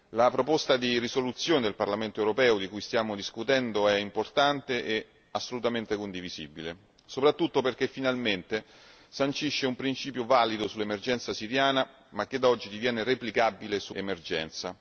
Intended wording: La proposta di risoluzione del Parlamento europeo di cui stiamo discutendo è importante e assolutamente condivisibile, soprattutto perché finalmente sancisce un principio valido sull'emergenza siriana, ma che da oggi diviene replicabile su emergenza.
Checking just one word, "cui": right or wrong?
right